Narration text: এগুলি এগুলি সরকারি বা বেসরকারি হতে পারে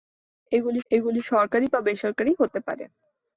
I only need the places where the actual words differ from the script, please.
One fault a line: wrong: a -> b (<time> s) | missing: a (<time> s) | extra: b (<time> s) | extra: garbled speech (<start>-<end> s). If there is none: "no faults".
no faults